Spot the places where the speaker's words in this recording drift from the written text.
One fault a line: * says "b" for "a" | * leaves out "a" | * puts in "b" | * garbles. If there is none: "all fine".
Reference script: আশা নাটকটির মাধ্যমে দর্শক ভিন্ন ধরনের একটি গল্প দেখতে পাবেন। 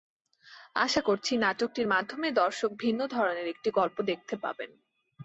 * puts in "করছি"